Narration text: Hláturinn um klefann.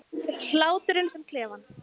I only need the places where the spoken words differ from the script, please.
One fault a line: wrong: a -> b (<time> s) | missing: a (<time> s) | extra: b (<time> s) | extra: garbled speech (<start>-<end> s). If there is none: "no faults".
no faults